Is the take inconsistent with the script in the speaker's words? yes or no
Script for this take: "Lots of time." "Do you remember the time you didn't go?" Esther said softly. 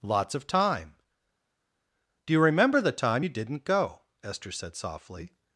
no